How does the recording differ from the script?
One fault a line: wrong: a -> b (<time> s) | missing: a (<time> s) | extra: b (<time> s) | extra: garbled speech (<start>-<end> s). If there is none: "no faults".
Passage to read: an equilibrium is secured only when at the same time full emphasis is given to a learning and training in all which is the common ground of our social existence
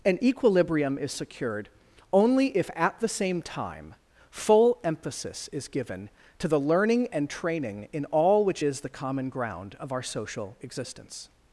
wrong: when -> if (2.6 s)
wrong: a -> the (6.5 s)